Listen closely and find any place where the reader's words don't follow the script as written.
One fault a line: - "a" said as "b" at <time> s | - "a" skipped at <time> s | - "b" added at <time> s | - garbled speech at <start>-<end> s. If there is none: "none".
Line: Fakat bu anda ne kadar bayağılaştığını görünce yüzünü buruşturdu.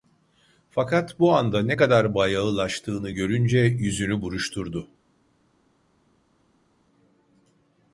none